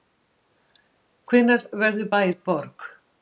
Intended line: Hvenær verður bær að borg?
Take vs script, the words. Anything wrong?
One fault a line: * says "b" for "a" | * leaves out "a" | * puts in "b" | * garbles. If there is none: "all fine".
all fine